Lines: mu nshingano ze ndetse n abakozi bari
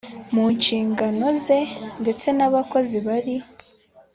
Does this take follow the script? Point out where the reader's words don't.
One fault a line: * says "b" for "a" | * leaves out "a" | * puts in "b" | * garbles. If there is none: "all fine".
all fine